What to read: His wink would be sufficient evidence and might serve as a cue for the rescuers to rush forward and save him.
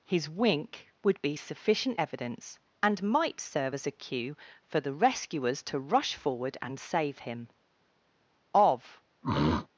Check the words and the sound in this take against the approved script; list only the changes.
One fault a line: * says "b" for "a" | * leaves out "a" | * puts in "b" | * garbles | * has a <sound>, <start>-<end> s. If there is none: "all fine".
* puts in "Of"
* has a throat clearing, 9.2-9.7 s